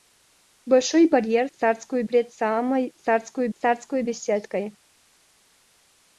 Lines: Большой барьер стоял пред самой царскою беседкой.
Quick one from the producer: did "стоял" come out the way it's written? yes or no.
no